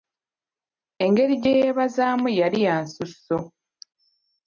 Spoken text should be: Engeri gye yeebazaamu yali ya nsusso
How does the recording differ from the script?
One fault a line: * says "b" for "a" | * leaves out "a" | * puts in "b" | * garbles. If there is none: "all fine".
all fine